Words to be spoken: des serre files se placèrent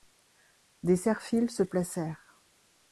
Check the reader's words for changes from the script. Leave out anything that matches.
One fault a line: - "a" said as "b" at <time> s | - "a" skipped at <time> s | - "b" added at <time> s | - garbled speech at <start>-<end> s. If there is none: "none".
none